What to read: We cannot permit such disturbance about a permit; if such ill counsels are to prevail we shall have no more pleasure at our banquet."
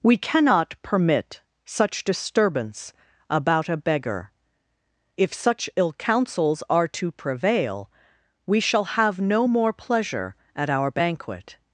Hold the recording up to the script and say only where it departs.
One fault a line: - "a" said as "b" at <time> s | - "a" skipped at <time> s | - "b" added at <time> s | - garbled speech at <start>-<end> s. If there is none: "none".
- "permit" said as "beggar" at 3.8 s